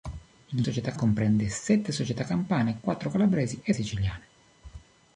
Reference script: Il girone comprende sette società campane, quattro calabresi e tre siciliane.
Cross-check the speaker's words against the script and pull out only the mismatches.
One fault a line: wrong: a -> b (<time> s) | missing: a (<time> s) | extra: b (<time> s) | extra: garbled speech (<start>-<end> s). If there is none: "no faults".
wrong: girone -> società (0.6 s)
missing: tre (3.7 s)